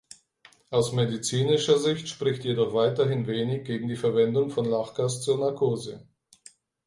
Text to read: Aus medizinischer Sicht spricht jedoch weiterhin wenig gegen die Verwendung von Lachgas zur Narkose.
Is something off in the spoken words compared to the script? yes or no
no